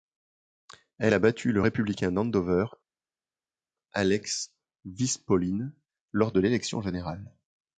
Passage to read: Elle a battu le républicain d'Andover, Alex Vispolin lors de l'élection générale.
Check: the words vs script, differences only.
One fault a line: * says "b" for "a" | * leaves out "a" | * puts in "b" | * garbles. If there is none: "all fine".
all fine